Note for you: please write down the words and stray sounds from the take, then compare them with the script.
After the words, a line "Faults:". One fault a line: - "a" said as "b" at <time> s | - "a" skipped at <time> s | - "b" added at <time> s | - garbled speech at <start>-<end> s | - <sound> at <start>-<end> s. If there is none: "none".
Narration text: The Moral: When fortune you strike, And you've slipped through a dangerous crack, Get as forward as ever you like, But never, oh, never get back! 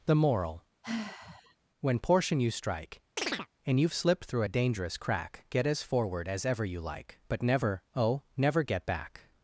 The Moral: When portion you strike, And you've slipped through a dangerous crack, Get as forward as ever you like, But never, oh, never get back!
Faults:
- sigh at 0.8-1.6 s
- "fortune" said as "portion" at 2.0 s
- chirp at 3.2-3.5 s